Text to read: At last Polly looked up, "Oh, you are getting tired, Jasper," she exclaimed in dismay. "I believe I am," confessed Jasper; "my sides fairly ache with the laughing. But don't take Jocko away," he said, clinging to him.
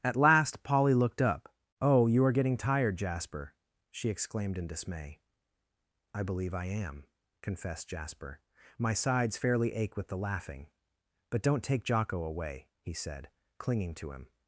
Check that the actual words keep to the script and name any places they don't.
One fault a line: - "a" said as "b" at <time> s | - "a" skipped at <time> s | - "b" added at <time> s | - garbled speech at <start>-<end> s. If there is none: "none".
none